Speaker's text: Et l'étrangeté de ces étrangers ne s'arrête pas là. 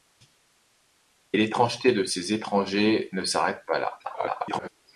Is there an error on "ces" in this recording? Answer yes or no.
no